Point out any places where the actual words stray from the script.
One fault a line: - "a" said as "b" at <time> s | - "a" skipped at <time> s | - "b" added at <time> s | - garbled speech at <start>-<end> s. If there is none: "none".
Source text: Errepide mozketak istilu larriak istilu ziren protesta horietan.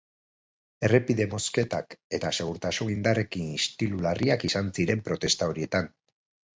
- "eta segurtasun indarrekin" added at 2.2 s
- "istilu" said as "izan" at 4.5 s